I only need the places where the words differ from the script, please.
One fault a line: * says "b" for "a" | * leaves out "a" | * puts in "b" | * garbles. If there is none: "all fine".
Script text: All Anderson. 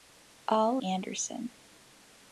all fine